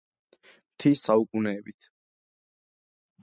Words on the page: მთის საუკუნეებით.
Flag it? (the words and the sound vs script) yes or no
no